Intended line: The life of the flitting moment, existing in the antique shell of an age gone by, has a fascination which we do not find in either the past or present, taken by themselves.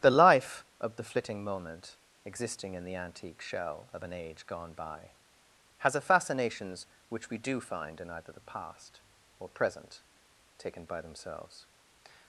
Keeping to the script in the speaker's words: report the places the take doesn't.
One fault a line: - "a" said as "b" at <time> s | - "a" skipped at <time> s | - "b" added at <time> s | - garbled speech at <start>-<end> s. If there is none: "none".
- "fascination" said as "fascinations" at 6.0 s
- "not" skipped at 7.6 s